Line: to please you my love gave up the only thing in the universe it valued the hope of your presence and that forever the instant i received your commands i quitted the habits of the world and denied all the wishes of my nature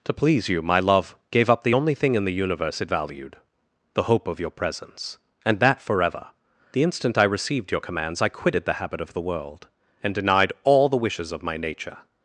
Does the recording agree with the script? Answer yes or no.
no